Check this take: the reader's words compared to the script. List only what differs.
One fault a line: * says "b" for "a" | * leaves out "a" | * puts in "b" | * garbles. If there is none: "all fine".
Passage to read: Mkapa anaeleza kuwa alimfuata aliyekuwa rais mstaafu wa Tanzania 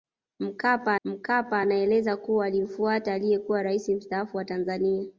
* puts in "mkapa"